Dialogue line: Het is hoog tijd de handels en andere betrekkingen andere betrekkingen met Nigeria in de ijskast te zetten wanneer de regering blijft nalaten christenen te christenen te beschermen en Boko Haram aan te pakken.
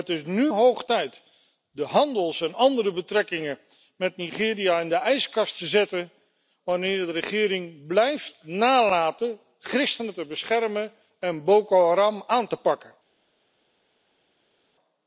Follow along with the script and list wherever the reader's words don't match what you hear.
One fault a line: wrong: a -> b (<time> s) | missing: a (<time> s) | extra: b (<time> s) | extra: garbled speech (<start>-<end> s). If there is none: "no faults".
extra: nu (0.2 s)
missing: andere betrekkingen (3.6 s)
missing: christenen te (10.3 s)